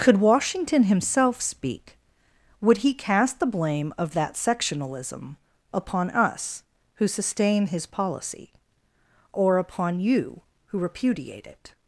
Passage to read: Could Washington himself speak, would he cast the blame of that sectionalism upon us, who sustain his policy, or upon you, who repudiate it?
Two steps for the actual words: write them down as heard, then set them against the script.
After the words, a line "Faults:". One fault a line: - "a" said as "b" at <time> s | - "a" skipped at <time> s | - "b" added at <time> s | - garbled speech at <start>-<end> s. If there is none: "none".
Could Washington himself speak, would he cast the blame of that sectionalism upon us, who sustain his policy, or upon you, who repudiate it?
Faults:
none